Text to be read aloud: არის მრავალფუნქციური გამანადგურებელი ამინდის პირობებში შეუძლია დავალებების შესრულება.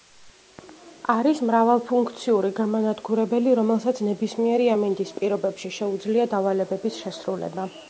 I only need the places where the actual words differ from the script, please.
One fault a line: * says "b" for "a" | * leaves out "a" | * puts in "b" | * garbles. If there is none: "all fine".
* puts in "რომელსაც ნებისმიერი"